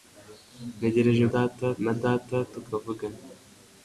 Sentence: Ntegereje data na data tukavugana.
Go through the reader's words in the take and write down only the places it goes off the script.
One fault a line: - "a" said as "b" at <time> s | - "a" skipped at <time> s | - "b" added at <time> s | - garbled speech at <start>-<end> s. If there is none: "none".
none